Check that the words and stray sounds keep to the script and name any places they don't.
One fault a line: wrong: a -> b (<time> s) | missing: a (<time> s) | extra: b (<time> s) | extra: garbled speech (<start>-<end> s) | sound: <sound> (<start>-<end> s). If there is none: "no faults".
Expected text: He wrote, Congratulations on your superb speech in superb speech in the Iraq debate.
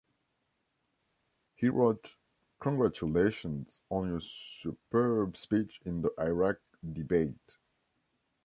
missing: superb speech in (6.0 s)